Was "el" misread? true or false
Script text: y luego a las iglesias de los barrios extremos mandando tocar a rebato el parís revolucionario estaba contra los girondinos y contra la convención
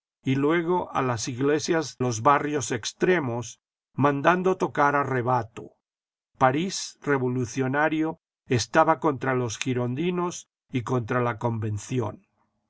true